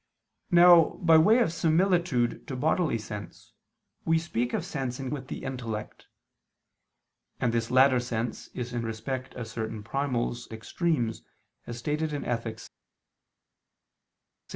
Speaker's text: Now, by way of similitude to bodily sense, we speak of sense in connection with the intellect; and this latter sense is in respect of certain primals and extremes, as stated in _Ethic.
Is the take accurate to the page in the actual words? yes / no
no